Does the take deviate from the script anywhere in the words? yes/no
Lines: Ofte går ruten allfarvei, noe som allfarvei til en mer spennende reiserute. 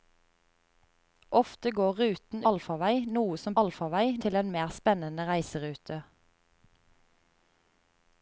no